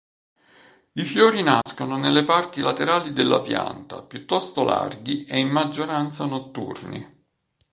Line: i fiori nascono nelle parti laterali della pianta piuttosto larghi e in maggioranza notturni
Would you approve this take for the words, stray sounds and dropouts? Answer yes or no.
no